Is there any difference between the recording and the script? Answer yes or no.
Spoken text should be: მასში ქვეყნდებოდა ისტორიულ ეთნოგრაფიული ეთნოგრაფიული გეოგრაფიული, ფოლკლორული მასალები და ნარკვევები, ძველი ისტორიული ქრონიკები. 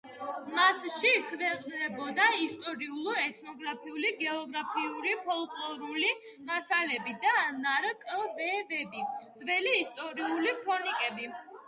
yes